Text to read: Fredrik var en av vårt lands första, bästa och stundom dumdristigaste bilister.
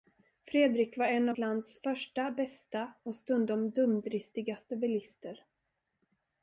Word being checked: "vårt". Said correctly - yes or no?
no